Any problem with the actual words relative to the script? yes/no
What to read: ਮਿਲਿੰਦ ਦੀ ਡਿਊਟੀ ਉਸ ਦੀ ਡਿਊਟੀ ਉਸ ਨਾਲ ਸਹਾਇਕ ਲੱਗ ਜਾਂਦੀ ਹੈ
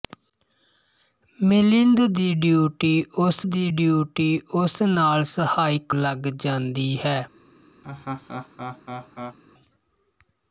no